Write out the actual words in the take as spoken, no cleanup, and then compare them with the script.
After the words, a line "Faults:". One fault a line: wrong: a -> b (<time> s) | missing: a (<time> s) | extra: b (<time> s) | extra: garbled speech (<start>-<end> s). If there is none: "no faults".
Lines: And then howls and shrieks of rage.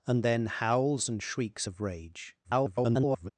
And then howls and shrieks of rage. [garbled]
Faults:
extra: garbled speech (2.4-3.3 s)